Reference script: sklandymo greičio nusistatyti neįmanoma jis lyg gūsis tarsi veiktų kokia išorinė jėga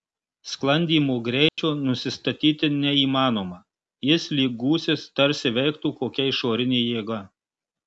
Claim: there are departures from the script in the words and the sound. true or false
true